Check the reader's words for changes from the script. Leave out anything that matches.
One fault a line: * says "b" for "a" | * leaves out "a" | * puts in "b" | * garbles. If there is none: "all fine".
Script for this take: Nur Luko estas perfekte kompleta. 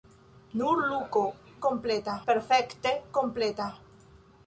* says "kompleta" for "estas"